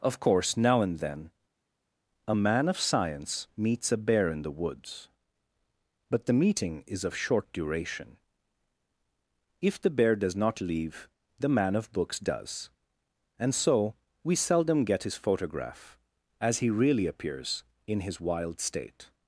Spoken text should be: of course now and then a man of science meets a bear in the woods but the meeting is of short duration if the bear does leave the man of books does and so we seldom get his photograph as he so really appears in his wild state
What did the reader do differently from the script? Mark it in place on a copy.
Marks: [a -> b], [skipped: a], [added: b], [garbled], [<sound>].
of course now and then a man of science meets a bear in the woods but the meeting is of short duration if the bear does [added: not] leave the man of books does and so we seldom get his photograph as he [skipped: so] really appears in his wild state